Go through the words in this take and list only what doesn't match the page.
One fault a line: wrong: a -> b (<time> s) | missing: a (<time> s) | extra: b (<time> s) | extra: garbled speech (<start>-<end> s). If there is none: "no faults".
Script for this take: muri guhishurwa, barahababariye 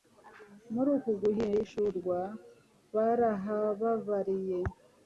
extra: uku (1.0 s)